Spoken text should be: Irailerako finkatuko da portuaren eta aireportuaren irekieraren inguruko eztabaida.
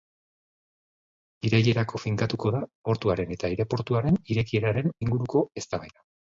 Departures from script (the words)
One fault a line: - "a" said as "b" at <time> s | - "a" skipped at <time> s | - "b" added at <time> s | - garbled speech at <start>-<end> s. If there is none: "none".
none